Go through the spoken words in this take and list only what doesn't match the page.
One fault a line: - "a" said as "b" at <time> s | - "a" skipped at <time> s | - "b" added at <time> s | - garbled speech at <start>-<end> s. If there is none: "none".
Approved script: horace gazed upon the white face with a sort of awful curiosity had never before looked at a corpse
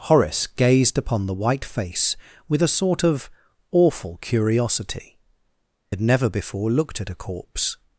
none